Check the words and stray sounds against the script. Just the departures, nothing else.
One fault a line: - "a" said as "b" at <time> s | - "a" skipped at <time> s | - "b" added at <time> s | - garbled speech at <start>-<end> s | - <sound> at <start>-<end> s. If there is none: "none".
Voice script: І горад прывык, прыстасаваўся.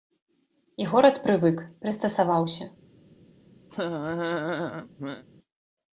- laugh at 3.7-5.2 s